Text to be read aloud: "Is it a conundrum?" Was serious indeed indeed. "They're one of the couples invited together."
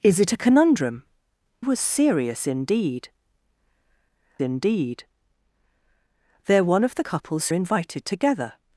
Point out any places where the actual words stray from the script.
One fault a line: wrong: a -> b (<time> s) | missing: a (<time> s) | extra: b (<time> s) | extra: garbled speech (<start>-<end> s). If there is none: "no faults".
no faults